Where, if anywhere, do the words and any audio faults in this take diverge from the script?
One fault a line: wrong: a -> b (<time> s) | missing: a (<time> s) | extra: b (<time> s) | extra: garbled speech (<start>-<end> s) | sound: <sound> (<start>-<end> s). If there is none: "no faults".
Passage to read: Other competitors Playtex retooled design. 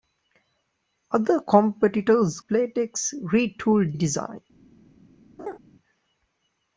sound: laugh (5.4-5.6 s)